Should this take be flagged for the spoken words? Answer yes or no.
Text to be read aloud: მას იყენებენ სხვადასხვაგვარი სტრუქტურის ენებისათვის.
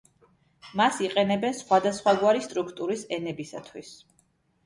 no